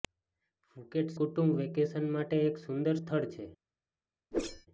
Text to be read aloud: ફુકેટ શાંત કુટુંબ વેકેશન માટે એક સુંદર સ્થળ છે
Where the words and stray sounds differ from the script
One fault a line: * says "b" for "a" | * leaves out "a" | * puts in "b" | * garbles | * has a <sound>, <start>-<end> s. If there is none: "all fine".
* leaves out "શાંત"
* has a whoosh, 4.3-4.7 s